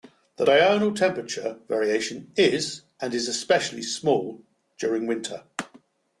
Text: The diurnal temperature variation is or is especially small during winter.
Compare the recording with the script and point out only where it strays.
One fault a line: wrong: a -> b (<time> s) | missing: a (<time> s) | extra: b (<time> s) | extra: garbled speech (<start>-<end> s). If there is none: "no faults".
wrong: or -> and (3.0 s)